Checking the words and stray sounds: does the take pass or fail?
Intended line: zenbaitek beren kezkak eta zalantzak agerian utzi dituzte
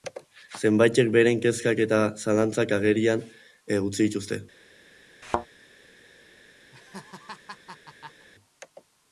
fail